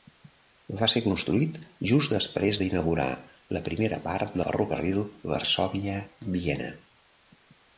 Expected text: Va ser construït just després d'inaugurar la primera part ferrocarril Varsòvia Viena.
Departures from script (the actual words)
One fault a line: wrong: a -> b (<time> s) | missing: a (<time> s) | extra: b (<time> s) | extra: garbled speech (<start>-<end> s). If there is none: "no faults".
no faults